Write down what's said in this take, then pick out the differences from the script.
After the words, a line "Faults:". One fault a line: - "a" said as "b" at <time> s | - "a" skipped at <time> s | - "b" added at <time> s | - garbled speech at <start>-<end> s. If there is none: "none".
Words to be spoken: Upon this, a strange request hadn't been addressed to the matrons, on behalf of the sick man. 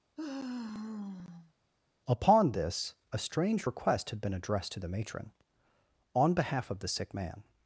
Upon this, a strange request had been addressed to the matron, on behalf of the sick man.
Faults:
- "hadn't" said as "had" at 4.1 s
- "matrons" said as "matron" at 4.9 s